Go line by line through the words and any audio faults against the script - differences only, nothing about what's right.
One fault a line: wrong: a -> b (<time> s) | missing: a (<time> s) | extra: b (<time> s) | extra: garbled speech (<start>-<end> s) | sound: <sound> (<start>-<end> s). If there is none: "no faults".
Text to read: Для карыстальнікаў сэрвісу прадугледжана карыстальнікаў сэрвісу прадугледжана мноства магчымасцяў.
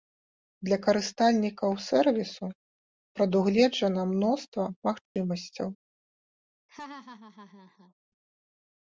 missing: карыстальнікаў сэрвісу прадугледжана (4.0 s)
sound: dropout (5.1-5.2 s)
sound: laugh (6.7-7.9 s)